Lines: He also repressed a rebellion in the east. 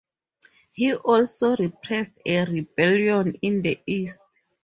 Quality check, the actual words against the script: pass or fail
pass